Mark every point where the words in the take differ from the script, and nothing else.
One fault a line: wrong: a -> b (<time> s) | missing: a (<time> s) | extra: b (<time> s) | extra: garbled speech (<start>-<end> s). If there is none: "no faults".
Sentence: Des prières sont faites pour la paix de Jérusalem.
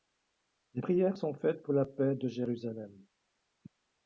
no faults